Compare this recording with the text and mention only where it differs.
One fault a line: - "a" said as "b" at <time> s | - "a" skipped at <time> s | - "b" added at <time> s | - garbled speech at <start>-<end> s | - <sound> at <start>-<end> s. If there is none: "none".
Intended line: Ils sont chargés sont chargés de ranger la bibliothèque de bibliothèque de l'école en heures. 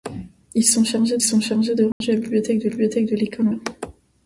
- dropout at 1.9-2.0 s